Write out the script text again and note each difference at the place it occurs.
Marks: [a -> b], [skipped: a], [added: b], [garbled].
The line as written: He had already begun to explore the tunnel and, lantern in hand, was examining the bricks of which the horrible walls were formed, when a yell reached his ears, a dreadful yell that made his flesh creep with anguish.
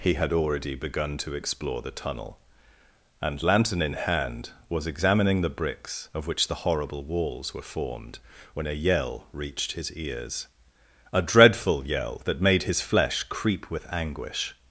He had already begun to explore the tunnel and, lantern in hand, was examining the bricks of which the horrible walls were formed, when a yell reached his ears, a dreadful yell that made his flesh creep with anguish.